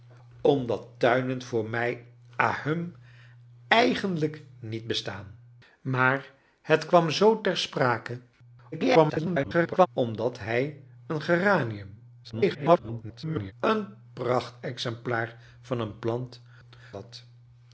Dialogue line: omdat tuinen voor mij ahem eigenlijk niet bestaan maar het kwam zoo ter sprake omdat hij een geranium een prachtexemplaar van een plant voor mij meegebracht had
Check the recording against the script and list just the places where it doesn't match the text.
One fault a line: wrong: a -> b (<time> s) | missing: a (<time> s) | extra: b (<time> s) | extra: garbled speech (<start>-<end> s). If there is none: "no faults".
extra: garbled speech (8.7-9.9 s)
extra: garbled speech (12.2-13.5 s)
missing: voor mij meegebracht (16.4 s)